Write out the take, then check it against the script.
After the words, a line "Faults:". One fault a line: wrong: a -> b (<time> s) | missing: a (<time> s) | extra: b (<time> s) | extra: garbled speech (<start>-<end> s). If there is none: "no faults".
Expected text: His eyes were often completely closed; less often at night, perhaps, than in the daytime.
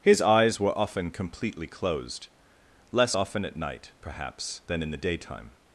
His eyes were often completely closed; less often at night, perhaps, than in the daytime.
Faults:
no faults